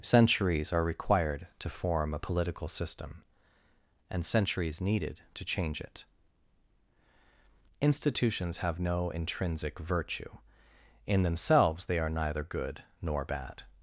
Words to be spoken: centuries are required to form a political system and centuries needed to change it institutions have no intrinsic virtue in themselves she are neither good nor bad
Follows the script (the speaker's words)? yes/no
no